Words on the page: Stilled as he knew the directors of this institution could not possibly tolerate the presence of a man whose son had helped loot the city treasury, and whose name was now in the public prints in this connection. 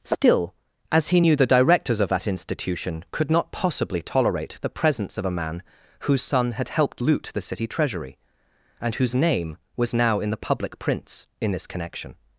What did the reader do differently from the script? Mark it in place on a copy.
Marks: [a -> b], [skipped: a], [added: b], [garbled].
[Stilled -> Still] as he knew the directors of [this -> that] institution could not possibly tolerate the presence of a man whose son had helped loot the city treasury, and whose name was now in the public prints in this connection.